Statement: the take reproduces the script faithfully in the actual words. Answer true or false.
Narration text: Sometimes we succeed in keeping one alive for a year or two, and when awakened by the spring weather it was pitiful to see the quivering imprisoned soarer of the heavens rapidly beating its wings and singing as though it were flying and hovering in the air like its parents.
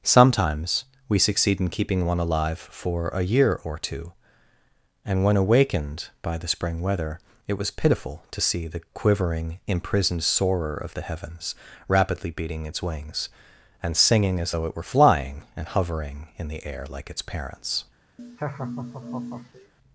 true